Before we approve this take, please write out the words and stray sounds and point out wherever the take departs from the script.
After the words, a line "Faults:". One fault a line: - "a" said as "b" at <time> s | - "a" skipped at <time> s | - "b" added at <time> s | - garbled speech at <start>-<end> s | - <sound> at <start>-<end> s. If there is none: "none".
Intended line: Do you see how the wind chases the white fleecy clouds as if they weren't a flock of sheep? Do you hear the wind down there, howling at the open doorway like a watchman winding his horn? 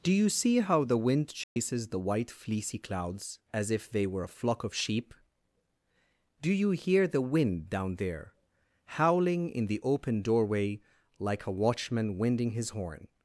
Do you see how the wind chases the white fleecy clouds as if they were a flock of sheep? Do you hear the wind down there, howling in the open doorway like a watchman winding his horn?
Faults:
- dropout at 1.4-1.6 s
- "weren't" said as "were" at 4.1 s
- "at" said as "in" at 9.5 s